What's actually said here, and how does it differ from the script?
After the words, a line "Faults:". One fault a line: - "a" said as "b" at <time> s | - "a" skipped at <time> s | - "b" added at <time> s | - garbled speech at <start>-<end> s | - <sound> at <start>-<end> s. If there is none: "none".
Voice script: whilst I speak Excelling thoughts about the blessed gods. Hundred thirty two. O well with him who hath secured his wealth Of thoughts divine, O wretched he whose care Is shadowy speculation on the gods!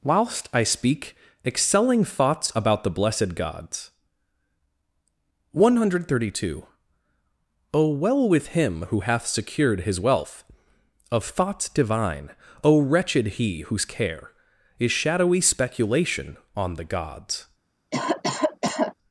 whilst I speak Excelling thoughts about the blessed gods. One hundred thirty two. O well with him who hath secured his wealth Of thoughts divine, O wretched he whose care Is shadowy speculation on the gods!
Faults:
- "One" added at 5.5 s
- cough at 17.9-18.9 s